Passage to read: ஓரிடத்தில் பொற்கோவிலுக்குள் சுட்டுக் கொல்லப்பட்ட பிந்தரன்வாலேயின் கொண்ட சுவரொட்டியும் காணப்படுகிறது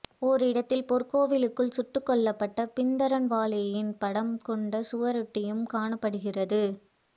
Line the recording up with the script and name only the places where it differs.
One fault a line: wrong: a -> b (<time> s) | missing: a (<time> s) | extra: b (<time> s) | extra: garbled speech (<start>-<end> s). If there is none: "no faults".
extra: படம் (4.0 s)